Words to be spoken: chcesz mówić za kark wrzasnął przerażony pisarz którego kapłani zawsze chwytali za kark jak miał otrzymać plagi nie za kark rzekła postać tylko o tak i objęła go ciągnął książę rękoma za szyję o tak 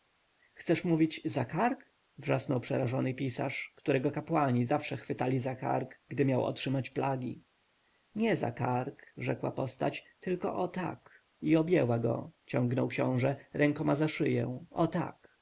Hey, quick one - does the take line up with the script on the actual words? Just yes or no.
no